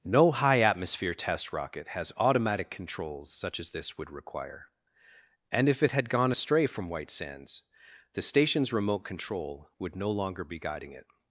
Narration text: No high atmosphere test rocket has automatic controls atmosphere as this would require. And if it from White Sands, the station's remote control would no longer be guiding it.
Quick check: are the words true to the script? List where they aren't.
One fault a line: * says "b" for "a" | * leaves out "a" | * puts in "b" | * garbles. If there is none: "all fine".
* says "such" for "atmosphere"
* puts in "had gone astray"